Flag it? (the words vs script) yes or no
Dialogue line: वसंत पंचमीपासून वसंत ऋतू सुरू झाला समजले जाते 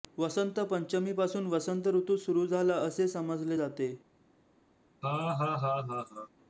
yes